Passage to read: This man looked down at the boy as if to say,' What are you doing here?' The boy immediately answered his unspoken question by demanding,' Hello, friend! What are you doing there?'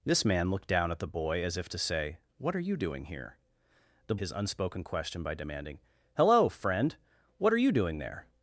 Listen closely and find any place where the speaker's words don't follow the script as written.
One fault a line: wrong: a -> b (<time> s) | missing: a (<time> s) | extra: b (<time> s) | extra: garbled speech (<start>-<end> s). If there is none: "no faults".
missing: boy immediately answered (4.2 s)